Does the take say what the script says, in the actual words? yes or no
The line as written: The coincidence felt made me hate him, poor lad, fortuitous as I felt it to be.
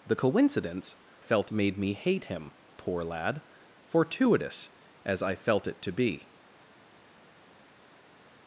yes